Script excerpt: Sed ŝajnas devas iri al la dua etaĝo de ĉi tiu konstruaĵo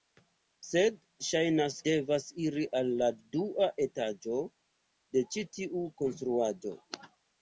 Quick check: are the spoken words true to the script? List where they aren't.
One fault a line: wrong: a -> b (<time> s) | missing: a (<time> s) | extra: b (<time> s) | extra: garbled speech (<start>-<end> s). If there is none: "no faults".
no faults